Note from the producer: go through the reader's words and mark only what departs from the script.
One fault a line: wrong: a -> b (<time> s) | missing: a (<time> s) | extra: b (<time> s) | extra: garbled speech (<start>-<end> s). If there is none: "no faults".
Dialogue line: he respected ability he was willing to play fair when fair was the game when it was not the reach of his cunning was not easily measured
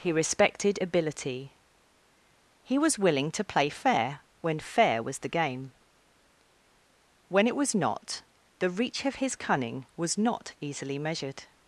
no faults